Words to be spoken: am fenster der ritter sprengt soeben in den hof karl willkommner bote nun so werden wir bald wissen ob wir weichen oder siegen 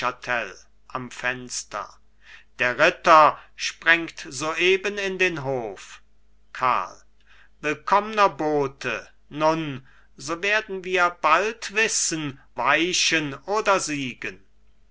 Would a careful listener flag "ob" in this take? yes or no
yes